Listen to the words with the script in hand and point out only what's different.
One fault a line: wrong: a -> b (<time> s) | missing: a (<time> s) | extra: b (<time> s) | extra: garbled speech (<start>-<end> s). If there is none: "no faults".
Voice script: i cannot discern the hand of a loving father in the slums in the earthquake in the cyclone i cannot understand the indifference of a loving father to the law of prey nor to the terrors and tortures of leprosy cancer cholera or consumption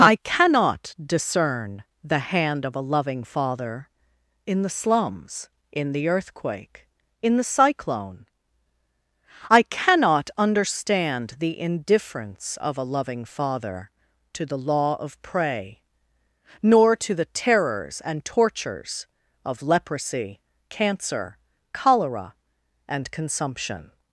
wrong: or -> and (22.9 s)